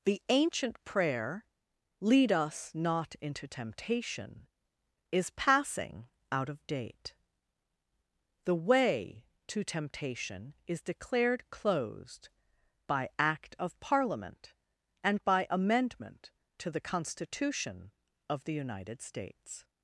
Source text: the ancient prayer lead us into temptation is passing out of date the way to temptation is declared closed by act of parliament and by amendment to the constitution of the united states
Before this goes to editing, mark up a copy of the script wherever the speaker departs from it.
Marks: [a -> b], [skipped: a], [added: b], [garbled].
the ancient prayer lead us [added: not] into temptation is passing out of date the way to temptation is declared closed by act of parliament and by amendment to the constitution of the united states